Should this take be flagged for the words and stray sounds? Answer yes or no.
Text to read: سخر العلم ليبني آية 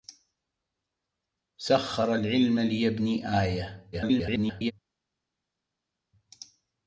yes